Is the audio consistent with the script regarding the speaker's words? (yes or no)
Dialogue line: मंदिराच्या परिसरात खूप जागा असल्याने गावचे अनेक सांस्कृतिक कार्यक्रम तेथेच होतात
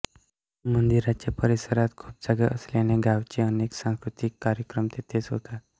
yes